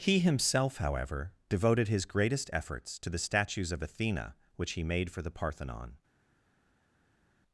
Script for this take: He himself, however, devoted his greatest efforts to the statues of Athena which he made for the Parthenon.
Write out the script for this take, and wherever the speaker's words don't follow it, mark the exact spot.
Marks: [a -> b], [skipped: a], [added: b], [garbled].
He himself, however, devoted his greatest efforts to the statues of Athena which he made for the Parthenon.